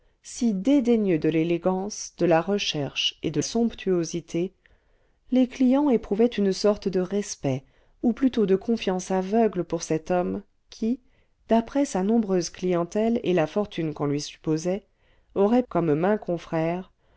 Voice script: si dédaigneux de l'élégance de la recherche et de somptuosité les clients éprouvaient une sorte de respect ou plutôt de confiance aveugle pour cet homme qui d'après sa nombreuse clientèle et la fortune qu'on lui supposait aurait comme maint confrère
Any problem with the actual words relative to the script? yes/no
no